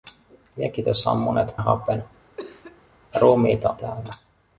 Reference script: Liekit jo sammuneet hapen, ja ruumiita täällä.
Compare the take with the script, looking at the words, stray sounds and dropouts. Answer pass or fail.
fail